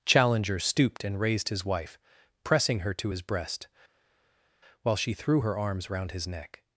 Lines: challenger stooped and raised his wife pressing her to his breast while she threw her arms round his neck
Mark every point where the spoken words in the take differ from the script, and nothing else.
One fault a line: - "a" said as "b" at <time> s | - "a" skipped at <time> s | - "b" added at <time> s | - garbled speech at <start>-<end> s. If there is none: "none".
none